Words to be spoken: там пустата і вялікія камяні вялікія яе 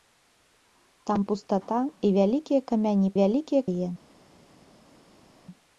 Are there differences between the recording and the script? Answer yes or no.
no